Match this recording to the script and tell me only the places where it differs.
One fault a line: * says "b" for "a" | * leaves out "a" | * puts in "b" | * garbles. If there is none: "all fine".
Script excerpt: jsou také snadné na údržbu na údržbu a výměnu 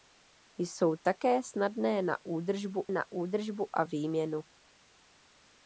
all fine